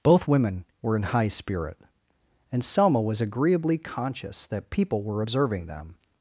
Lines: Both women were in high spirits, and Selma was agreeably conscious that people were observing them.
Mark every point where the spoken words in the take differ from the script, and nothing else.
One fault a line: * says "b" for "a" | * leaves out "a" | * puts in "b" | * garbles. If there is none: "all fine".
* says "spirit" for "spirits"